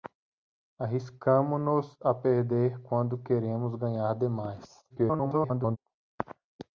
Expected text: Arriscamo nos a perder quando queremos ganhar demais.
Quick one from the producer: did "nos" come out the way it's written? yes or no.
yes